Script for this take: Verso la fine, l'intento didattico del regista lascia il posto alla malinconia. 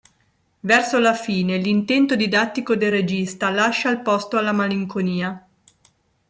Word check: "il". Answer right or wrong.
right